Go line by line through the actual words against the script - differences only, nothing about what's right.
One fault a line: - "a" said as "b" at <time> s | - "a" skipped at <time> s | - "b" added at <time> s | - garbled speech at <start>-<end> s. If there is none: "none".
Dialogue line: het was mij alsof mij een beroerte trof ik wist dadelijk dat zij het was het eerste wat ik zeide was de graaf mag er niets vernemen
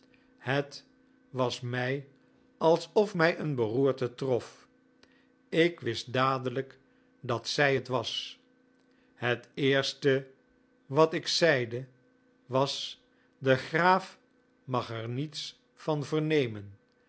- "van" added at 15.7 s